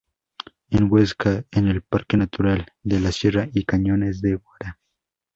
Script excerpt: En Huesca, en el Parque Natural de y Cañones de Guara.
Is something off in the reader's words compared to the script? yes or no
yes